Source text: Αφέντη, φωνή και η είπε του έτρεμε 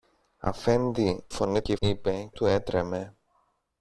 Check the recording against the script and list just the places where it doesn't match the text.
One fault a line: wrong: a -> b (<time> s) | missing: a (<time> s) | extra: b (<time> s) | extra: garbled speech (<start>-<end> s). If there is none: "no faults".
no faults